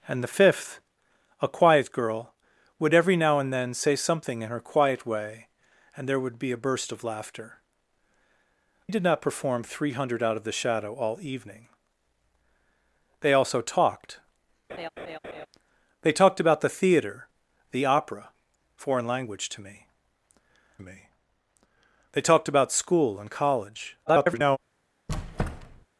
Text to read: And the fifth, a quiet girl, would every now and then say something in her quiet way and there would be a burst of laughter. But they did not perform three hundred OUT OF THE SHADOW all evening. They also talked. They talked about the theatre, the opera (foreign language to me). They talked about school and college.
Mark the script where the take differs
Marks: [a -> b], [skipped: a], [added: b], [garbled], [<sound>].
And the fifth, a quiet girl, would every now and then say something in her quiet way and there would be a burst of laughter. [skipped: But they] did not perform three hundred OUT OF THE SHADOW all evening. They also talked. [laugh] They talked about the theatre, the opera (foreign language to me). [added: me] They talked about school and college. [garbled] [squeak]